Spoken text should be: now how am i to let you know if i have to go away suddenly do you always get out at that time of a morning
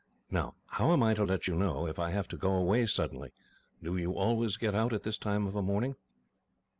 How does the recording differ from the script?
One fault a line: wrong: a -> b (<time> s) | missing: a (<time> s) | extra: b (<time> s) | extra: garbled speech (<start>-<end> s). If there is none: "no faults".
wrong: that -> this (5.0 s)